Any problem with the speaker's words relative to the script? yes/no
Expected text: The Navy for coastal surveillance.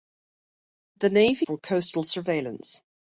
no